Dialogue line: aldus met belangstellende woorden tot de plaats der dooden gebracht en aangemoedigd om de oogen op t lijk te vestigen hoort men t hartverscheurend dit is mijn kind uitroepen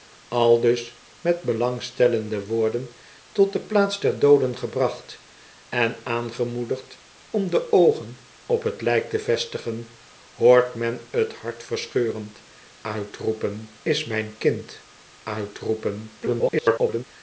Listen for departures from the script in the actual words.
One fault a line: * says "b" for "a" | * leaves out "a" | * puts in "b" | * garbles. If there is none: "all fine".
* says "uitroepen" for "dit"
* garbles